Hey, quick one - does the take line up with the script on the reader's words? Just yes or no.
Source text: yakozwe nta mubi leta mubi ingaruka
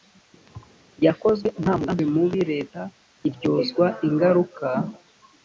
no